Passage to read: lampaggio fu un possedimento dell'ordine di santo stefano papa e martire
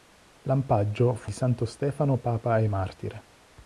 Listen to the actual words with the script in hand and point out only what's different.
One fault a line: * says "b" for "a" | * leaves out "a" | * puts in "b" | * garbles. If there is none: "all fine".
* leaves out "un possedimento dell'ordine"